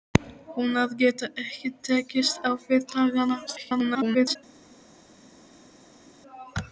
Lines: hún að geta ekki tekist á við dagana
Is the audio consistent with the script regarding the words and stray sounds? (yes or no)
no